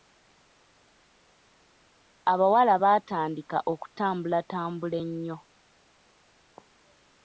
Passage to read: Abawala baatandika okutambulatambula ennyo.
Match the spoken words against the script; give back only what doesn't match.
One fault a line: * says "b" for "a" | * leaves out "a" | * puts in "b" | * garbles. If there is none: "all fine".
all fine